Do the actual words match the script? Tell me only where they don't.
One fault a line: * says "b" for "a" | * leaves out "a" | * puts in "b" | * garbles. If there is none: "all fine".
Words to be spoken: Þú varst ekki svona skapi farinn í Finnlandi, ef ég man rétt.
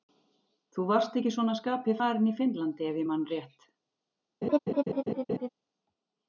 all fine